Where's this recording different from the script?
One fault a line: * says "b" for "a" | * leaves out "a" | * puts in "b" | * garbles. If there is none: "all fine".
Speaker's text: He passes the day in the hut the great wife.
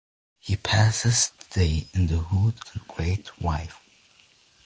all fine